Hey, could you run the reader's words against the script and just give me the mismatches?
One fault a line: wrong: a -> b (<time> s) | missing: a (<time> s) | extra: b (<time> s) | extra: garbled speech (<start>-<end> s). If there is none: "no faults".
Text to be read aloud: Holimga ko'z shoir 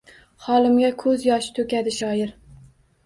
extra: yoshi to'kadi (1.3 s)